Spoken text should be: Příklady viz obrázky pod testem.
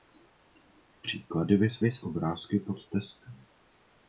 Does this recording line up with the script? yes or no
no